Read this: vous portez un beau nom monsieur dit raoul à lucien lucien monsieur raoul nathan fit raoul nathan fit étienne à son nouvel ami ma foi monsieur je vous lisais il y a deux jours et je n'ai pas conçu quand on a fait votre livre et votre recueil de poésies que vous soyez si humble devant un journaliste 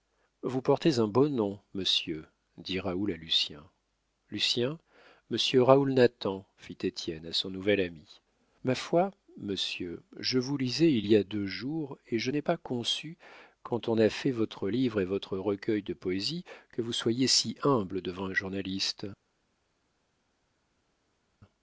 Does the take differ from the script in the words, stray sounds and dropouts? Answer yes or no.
yes